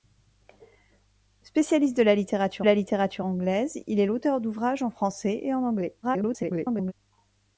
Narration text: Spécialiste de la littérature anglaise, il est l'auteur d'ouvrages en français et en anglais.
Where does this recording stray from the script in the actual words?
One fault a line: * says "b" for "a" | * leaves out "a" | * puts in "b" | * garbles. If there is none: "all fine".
* puts in "la littérature"
* garbles